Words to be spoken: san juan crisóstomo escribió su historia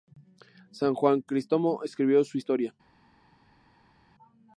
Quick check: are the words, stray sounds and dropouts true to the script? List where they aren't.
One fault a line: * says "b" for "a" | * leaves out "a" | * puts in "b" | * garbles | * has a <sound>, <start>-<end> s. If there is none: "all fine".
all fine